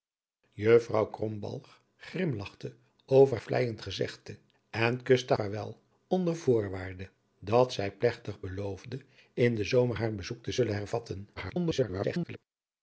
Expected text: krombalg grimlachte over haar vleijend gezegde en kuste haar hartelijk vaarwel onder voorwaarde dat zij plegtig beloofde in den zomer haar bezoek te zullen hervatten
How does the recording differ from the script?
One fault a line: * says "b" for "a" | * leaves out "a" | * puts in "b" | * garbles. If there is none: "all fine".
* leaves out "haar"
* leaves out "haar hartelijk"
* garbles